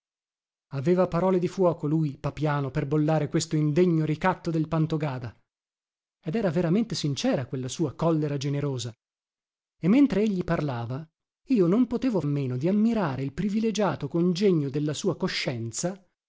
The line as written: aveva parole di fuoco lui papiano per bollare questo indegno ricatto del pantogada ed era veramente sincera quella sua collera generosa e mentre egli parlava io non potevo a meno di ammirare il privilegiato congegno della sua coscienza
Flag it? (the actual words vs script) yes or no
no